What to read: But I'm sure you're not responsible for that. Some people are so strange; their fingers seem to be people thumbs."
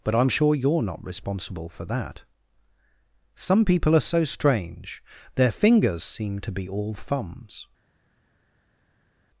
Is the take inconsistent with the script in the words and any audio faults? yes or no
yes